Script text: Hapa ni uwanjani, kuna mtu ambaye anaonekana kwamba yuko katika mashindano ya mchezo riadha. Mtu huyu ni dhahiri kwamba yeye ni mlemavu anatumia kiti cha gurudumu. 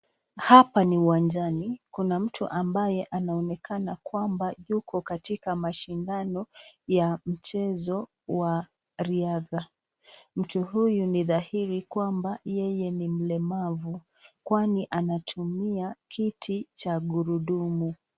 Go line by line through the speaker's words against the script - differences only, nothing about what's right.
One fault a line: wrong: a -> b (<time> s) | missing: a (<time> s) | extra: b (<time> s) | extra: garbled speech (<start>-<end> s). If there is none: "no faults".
extra: wa (8.3 s)
extra: kwani (14.4 s)